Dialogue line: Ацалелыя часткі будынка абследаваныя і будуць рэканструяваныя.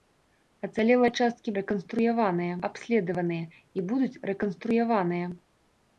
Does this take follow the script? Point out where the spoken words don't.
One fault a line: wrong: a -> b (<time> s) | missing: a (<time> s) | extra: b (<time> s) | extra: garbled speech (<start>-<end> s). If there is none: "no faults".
wrong: будынка -> рэканструяваныя (1.6 s)